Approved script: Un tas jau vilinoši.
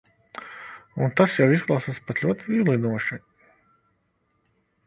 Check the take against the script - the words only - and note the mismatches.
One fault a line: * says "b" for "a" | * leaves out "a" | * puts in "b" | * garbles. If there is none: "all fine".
* puts in "izklausās pat ļoti"